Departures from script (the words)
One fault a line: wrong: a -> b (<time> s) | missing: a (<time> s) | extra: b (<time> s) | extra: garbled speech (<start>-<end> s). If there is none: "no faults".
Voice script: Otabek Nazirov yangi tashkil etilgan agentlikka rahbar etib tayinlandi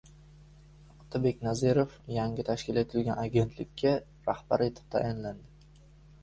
no faults